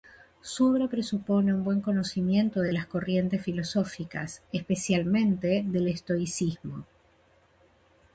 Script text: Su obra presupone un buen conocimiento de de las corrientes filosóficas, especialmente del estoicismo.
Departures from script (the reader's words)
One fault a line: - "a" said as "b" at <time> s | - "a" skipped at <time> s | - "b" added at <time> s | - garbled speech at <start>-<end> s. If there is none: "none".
none